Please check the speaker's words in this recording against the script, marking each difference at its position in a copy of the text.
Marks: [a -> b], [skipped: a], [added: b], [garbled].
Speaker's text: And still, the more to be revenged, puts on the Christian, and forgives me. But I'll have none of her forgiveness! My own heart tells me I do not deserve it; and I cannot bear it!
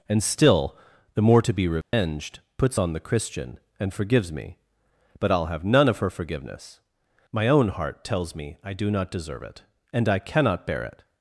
And still, the more to be revenged, puts on the Christian, and forgives me. But I'll have none of her forgiveness! My own heart tells me I do not deserve it; and I cannot bear it!